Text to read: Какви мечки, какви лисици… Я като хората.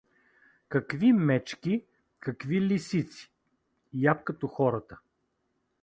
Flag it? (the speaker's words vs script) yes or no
no